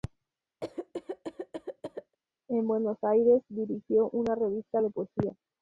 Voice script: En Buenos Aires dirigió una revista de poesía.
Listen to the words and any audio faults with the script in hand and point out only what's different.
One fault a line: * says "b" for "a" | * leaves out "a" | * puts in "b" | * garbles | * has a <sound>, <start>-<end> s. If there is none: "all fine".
* has a cough, 0.6-2.2 s